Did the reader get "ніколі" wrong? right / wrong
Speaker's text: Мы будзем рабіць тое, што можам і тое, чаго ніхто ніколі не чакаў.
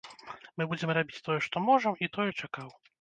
wrong